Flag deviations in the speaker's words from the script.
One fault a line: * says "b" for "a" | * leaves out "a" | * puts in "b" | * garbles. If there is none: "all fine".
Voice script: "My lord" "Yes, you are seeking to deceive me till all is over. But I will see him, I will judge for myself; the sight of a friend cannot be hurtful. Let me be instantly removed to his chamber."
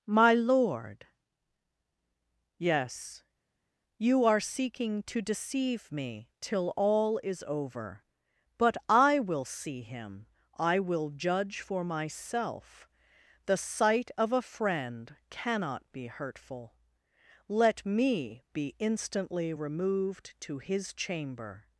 all fine